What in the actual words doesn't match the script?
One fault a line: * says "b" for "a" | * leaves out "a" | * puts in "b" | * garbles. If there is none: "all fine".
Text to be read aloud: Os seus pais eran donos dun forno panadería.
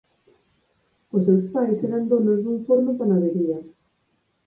all fine